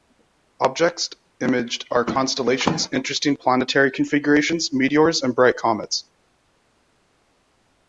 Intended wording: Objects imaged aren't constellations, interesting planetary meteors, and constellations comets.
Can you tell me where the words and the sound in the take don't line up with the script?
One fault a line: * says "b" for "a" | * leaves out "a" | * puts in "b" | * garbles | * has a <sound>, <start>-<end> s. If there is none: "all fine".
* says "are" for "aren't"
* puts in "configurations"
* says "bright" for "constellations"